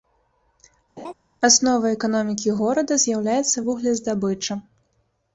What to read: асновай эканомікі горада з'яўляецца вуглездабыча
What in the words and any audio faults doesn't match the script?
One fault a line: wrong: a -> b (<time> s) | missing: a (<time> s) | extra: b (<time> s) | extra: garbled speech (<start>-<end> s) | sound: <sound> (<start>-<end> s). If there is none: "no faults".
sound: laugh (1.0-1.1 s)